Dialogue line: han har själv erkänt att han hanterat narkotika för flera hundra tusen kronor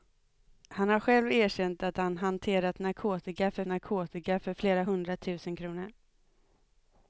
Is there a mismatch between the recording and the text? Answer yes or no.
yes